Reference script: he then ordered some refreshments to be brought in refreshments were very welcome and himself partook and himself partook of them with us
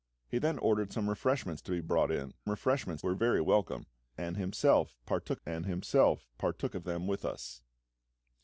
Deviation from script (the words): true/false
false